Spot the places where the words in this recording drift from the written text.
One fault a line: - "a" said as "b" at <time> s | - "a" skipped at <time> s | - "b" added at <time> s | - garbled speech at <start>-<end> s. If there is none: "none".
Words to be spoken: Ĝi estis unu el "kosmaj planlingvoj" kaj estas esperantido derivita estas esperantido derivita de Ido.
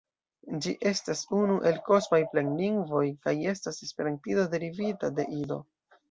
- "estis" said as "estas" at 0.9 s
- "estas esperantido derivita" skipped at 5.1 s